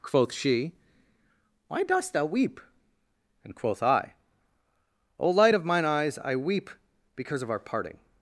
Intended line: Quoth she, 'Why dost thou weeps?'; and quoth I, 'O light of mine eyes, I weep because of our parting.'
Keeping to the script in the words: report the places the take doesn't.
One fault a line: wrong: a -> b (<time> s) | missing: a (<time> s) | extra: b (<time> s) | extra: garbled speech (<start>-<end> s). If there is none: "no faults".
wrong: weeps -> weep (2.2 s)